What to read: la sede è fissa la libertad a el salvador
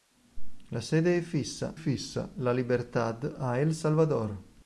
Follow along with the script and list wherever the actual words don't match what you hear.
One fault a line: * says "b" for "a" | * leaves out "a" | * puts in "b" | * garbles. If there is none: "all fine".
* puts in "fissa"